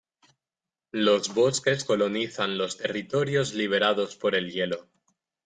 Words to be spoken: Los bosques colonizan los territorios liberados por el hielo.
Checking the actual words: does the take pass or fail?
pass